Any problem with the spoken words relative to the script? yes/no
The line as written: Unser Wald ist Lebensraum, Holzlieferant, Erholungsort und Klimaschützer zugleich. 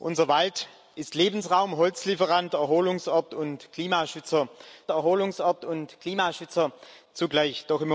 yes